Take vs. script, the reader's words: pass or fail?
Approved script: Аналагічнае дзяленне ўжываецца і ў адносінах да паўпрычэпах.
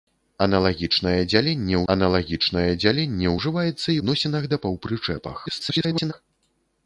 fail